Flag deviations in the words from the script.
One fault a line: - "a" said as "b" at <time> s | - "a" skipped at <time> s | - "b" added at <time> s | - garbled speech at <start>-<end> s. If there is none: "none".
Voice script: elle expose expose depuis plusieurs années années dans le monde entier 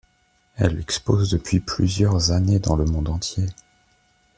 - "expose" skipped at 1.3 s
- "années" skipped at 2.6 s